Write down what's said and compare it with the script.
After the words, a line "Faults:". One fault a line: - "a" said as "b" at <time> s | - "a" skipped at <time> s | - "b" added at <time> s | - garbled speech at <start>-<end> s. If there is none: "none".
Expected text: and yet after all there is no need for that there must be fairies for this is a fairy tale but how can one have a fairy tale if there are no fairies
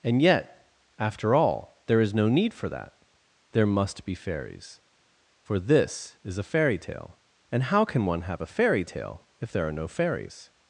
and yet after all there is no need for that there must be fairies for this is a fairy tale and how can one have a fairy tale if there are no fairies
Faults:
- "but" said as "and" at 7.5 s